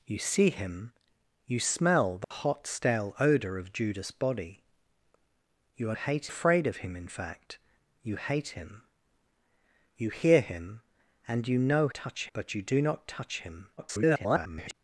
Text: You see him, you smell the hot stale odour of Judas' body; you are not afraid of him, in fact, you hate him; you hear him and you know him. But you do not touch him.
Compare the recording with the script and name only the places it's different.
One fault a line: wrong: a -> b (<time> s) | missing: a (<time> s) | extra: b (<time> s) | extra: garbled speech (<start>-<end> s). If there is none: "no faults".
wrong: not -> hate (5.9 s)
wrong: him -> touch (11.9 s)
extra: garbled speech (13.8-14.7 s)